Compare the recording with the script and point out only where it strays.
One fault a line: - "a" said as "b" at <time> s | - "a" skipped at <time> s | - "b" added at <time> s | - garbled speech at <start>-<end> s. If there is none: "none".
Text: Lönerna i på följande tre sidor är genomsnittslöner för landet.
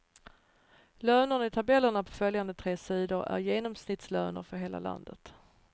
- "tabellerna" added at 1.5 s
- "hela" added at 4.6 s